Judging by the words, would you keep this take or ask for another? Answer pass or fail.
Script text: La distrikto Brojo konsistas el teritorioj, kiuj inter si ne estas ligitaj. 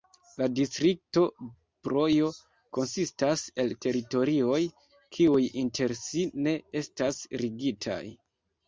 pass